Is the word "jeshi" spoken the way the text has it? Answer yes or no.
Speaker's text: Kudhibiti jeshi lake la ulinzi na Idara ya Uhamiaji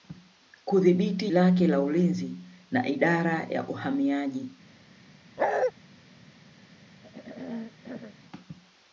no